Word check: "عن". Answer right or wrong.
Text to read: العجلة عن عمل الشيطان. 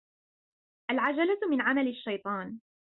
wrong